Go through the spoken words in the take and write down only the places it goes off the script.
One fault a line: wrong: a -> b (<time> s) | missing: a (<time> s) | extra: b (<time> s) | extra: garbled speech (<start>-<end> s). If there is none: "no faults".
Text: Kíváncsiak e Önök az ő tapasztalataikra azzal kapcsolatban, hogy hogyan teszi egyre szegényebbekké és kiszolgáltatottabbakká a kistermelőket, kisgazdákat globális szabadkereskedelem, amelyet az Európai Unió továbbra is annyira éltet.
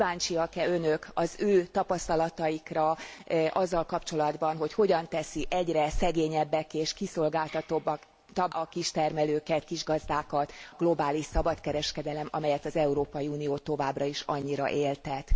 no faults